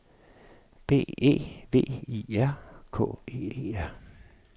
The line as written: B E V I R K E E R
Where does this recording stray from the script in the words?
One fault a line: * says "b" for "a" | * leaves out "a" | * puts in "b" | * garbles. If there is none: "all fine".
all fine